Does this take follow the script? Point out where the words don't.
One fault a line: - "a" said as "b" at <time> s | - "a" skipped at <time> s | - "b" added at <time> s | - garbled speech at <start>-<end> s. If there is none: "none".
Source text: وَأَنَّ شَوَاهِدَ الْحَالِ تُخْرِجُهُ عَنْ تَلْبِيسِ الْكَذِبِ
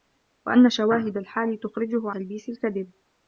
- "عَنْ" skipped at 2.1 s